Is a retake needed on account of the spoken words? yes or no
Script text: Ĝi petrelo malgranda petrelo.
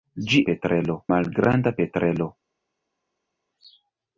no